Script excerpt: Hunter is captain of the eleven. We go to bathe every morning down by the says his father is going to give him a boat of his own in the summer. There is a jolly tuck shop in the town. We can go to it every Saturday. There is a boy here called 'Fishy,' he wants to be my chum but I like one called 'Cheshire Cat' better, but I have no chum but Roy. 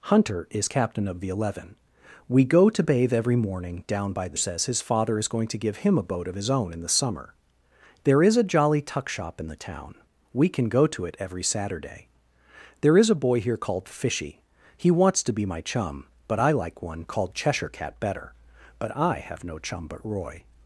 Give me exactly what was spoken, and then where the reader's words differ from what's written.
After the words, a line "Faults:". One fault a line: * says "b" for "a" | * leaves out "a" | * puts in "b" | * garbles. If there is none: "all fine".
Hunter is captain of the eleven. We go to bathe every morning down by the says his father is going to give him a boat of his own in the summer. There is a jolly tuck shop in the town. We can go to it every Saturday. There is a boy here called 'Fishy,' he wants to be my chum but I like one called 'Cheshire Cat' better, but I have no chum but Roy.
Faults:
all fine